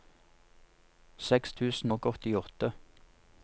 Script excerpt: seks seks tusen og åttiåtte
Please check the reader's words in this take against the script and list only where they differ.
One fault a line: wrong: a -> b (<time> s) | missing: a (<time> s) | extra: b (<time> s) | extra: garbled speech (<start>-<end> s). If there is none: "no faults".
missing: seks (1.5 s)